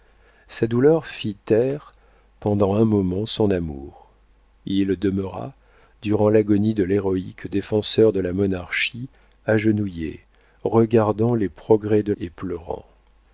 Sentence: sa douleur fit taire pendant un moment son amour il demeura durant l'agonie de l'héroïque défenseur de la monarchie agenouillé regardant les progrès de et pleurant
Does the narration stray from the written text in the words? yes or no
no